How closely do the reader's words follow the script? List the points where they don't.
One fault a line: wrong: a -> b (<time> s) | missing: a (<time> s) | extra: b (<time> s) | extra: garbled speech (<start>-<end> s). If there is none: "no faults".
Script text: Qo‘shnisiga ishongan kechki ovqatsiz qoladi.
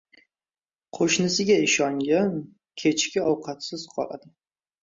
no faults